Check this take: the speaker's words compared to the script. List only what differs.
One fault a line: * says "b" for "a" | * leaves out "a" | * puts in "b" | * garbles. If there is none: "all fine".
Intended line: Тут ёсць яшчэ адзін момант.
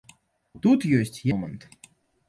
* leaves out "яшчэ адзін"